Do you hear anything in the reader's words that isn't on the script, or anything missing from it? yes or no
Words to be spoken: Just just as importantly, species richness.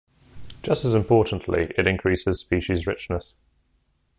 yes